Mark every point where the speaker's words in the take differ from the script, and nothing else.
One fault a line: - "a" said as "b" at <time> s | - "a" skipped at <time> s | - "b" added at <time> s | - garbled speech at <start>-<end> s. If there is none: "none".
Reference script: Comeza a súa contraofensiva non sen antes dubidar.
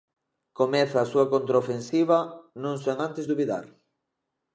none